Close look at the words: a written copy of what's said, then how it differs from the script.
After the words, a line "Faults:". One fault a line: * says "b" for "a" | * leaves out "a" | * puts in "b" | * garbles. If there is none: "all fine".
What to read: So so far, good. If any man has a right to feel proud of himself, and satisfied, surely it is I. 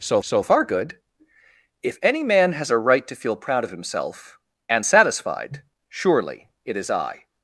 So so far, good. If any man has a right to feel proud of himself, and satisfied, surely it is I.
Faults:
all fine